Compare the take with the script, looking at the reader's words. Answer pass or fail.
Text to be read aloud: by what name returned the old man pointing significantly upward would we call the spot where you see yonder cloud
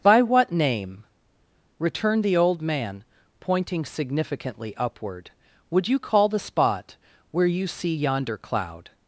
fail